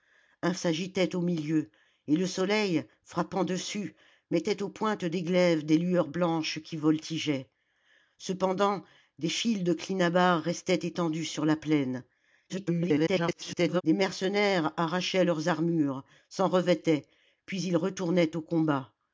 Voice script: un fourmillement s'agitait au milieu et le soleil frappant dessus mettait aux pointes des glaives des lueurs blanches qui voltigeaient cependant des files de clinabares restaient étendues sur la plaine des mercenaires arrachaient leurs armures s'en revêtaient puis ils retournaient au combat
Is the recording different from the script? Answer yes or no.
yes